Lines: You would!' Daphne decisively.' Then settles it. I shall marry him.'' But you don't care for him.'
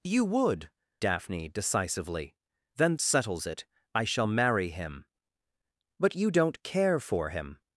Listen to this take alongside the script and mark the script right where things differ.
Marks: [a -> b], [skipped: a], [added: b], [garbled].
You would!' Daphne decisively.' Then settles it. I shall marry him.'' But you don't care for him.'